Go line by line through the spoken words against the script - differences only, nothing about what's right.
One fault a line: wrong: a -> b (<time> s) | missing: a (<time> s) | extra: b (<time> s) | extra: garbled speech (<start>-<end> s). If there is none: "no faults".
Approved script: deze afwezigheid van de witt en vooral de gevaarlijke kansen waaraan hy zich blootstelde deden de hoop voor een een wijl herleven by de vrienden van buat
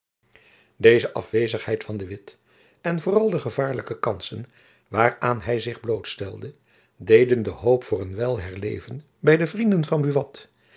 missing: een (8.2 s)